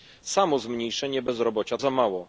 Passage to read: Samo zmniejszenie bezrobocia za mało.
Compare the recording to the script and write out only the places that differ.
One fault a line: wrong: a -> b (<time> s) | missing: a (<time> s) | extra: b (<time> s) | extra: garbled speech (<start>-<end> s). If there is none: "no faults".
no faults